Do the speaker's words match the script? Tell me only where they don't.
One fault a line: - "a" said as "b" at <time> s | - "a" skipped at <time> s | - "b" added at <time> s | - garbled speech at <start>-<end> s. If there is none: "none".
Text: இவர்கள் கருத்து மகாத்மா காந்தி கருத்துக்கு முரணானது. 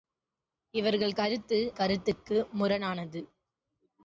- "மகாத்மா காந்தி" skipped at 1.6 s